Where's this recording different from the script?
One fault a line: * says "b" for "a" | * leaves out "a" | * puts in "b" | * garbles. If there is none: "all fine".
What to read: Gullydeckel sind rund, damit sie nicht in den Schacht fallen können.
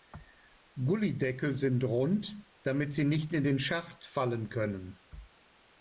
all fine